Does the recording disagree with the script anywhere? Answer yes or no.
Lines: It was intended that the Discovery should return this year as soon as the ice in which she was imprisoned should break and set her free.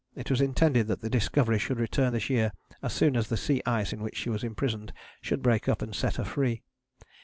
yes